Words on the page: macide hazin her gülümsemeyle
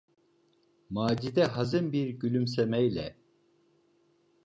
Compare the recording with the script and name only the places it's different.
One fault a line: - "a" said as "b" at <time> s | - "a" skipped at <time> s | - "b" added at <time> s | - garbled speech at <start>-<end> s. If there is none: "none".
- "her" said as "bir" at 1.9 s